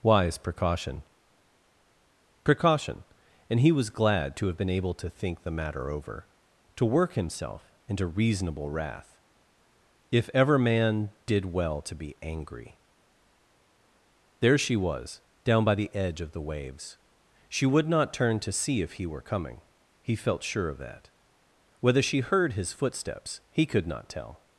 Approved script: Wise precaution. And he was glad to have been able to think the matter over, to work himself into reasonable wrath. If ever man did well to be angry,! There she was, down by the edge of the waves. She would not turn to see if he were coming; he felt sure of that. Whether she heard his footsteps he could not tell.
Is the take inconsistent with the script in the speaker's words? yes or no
yes